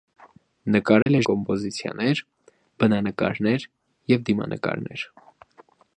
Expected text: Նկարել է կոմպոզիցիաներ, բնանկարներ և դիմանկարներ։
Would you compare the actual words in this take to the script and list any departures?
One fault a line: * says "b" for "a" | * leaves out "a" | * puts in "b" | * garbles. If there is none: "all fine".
all fine